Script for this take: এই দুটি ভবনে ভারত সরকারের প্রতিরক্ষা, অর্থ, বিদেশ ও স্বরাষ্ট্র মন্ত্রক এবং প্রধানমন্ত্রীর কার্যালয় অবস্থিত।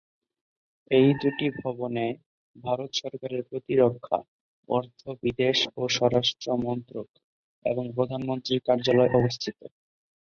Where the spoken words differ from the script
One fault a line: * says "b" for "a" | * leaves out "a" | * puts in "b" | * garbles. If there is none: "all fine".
all fine